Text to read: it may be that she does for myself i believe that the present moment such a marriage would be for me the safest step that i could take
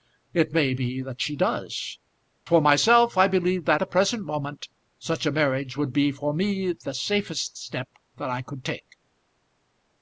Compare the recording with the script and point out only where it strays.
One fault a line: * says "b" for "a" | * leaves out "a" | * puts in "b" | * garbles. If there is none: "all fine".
all fine